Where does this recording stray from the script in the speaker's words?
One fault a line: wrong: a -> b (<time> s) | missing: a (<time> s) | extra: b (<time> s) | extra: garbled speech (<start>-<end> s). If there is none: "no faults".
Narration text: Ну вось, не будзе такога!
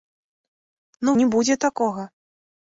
missing: вось (1.1 s)